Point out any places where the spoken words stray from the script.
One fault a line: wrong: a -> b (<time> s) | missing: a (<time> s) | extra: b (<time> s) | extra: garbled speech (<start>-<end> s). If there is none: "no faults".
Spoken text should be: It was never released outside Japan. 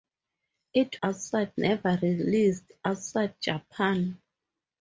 wrong: was -> outside (1.0 s)